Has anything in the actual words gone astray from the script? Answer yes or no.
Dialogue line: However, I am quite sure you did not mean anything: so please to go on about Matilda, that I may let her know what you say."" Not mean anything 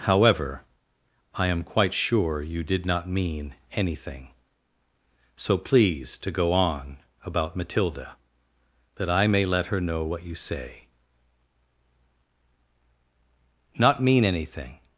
no